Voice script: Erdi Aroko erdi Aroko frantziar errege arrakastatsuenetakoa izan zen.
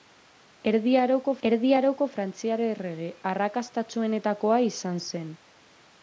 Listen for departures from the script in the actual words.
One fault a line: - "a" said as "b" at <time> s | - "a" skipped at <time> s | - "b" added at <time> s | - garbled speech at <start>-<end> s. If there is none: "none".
none